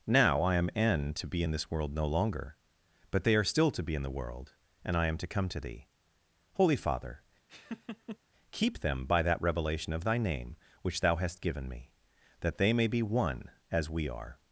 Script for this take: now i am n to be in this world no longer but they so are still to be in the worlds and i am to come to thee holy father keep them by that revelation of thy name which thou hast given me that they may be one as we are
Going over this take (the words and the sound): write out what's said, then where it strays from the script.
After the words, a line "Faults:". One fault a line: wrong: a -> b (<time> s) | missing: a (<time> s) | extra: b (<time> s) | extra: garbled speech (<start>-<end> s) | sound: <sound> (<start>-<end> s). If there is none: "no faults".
now i am n to be in this world no longer but they are still to be in the world and i am to come to thee holy father keep them by that revelation of thy name which thou hast given me that they may be one as we are
Faults:
missing: so (3.4 s)
wrong: worlds -> world (4.1 s)
sound: laugh (7.5-8.2 s)